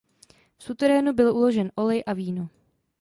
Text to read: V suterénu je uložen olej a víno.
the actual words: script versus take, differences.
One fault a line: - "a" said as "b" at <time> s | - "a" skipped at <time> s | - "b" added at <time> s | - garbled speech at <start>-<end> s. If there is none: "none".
- "je" said as "byl" at 1.1 s